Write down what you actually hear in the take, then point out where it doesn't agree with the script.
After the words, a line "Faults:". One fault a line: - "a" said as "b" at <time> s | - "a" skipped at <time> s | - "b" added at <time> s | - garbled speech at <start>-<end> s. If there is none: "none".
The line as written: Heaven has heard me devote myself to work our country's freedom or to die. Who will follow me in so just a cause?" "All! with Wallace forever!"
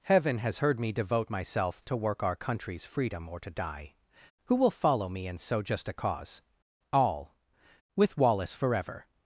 Heaven has heard me devote myself to work our country's freedom or to die. Who will follow me in so just a cause?" "All! with Wallace forever!"
Faults:
none